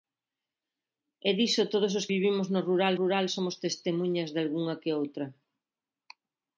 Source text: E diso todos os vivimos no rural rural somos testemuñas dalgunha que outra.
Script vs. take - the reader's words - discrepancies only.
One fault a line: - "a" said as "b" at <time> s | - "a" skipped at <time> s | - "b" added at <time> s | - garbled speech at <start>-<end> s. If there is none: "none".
none